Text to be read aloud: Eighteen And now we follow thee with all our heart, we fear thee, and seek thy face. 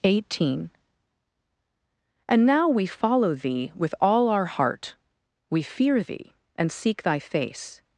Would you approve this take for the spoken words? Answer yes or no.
yes